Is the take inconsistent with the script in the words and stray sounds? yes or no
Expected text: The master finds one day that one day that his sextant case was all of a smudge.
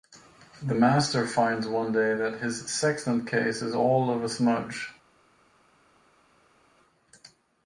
yes